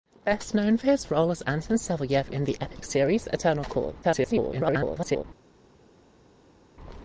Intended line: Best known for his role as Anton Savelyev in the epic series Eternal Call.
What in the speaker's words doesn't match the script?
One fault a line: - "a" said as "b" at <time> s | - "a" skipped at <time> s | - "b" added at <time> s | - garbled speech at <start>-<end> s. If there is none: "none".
- garbled speech at 4.0-5.2 s